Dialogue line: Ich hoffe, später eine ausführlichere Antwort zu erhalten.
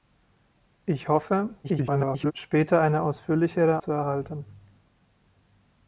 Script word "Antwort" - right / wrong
wrong